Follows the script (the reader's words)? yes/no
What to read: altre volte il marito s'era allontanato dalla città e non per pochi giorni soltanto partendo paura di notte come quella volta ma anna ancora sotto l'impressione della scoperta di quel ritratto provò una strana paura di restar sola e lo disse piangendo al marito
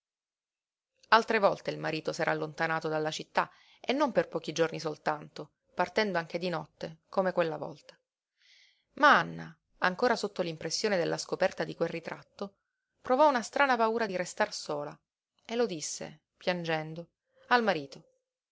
no